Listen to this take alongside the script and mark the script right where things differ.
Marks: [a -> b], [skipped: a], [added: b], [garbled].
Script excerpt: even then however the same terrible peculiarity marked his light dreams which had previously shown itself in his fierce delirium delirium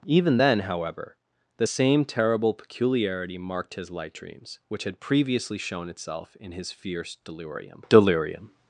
even then however the same terrible peculiarity marked his light dreams which had previously shown itself in his fierce delirium delirium